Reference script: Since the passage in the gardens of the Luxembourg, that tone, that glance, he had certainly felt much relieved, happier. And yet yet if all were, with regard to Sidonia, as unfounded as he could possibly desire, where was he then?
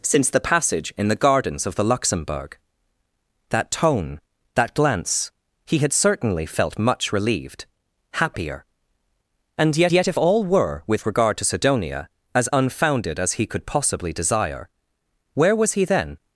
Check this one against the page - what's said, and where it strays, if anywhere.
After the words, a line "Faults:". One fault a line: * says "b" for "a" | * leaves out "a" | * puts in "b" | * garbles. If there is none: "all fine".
Since the passage in the gardens of the Luxembourg, that tone, that glance, he had certainly felt much relieved, happier. And yet yet if all were, with regard to Sidonia, as unfounded as he could possibly desire, where was he then?
Faults:
all fine